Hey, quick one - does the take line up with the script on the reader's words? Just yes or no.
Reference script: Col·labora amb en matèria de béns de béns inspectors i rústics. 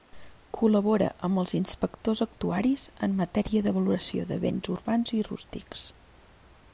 no